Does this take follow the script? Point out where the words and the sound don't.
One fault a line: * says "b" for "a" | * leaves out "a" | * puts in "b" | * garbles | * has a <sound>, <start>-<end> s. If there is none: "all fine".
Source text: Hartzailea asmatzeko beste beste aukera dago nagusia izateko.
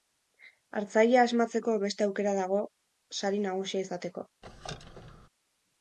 * leaves out "beste"
* puts in "sari"
* has a squeak, 4.4-5.3 s